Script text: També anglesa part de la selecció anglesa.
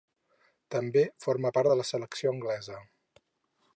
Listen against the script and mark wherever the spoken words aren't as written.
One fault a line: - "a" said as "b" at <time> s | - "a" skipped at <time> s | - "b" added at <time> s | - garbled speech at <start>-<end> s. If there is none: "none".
- "anglesa" said as "forma" at 1.2 s